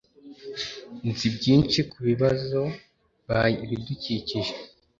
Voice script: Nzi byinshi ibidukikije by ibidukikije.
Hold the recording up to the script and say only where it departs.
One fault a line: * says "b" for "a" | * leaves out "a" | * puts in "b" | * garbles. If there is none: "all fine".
* says "kubibazo" for "ibidukikije"